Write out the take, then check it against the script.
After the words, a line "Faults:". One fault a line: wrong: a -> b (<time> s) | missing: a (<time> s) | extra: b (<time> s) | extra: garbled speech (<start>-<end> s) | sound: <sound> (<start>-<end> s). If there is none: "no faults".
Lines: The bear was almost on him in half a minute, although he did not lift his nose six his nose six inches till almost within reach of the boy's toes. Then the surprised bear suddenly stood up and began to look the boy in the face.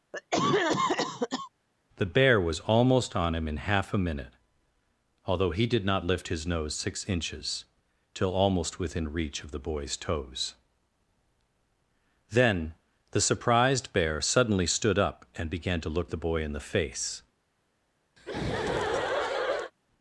The bear was almost on him in half a minute, although he did not lift his nose six inches till almost within reach of the boy's toes. Then the surprised bear suddenly stood up and began to look the boy in the face.
Faults:
sound: cough (0.1-1.5 s)
missing: his nose six (7.1 s)
sound: laugh (18.2-19.7 s)